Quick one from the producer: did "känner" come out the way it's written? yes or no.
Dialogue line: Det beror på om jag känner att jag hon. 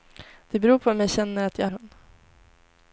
yes